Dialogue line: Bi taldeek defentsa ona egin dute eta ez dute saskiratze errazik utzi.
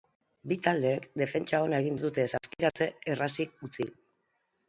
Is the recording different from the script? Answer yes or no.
yes